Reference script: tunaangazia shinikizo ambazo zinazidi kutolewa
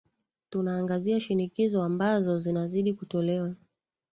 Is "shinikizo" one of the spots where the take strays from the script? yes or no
no